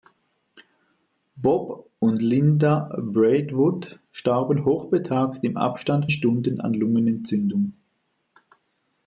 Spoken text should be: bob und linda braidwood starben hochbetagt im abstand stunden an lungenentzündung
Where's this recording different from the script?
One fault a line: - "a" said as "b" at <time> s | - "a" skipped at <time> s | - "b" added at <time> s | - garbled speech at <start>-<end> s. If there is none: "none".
none